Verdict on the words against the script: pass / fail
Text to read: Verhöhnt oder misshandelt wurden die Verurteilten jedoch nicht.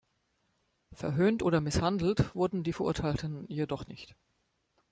pass